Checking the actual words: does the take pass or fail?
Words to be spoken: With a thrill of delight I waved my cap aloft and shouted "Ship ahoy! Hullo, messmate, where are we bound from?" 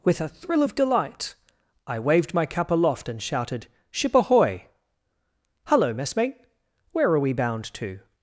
fail